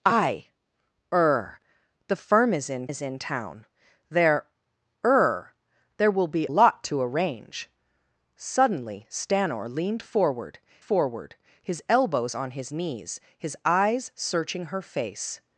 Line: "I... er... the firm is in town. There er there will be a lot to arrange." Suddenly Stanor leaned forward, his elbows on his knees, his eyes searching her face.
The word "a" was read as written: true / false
false